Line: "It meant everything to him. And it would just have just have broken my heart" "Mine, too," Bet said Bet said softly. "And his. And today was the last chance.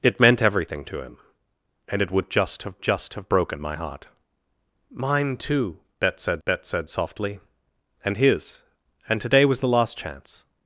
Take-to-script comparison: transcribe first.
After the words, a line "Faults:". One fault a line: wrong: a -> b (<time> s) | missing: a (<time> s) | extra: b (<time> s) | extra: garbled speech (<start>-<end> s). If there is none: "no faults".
"It meant everything to him. And it would just have just have broken my heart" "Mine, too," Bet said Bet said softly. "And his. And today was the last chance.
Faults:
no faults